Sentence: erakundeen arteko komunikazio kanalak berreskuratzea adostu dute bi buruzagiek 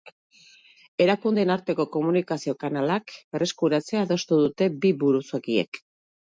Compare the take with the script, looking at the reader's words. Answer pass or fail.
pass